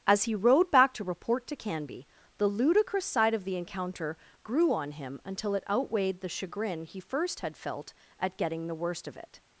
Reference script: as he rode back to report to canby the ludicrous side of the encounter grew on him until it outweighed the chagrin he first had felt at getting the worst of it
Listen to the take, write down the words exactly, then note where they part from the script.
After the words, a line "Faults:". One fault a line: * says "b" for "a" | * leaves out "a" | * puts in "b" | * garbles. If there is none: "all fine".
as he rode back to report to canby the ludicrous side of the encounter grew on him until it outweighed the chagrin he first had felt at getting the worst of it
Faults:
all fine